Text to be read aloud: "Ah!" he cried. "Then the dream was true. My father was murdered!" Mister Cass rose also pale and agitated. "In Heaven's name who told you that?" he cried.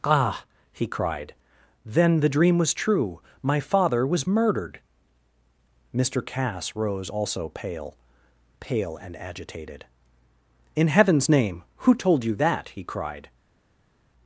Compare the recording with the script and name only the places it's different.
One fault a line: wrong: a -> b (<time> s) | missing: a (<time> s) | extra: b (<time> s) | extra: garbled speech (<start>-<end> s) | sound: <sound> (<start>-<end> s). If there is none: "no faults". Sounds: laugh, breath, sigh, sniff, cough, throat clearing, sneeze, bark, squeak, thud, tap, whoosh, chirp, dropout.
extra: pale (8.6 s)